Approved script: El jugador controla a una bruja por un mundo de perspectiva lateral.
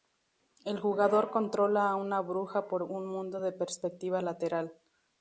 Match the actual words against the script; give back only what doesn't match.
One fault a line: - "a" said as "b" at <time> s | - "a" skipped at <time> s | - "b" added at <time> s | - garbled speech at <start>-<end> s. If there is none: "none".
none